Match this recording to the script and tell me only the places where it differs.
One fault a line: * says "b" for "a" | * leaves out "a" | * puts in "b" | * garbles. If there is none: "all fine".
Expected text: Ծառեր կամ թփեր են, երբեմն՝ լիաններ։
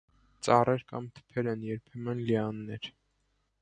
all fine